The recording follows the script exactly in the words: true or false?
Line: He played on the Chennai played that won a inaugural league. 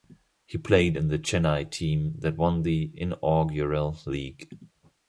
false